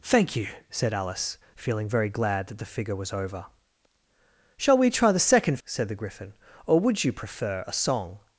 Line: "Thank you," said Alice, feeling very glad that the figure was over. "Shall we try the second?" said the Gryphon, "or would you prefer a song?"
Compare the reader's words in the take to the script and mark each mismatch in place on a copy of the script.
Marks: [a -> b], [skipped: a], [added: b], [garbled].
"Thank you," said Alice, feeling very glad that the figure was over. "Shall we try the second?" said the Gryphon, "or would you prefer a song?"